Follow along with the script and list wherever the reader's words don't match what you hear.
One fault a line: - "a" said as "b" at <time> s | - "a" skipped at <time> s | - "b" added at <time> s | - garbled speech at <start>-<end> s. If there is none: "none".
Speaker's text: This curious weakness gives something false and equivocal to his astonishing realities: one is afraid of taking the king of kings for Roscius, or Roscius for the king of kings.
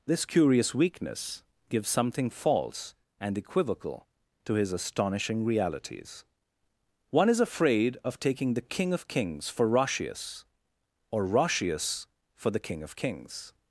none